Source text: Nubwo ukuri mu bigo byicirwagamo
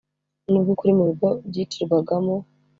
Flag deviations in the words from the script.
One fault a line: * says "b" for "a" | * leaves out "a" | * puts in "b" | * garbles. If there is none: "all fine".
all fine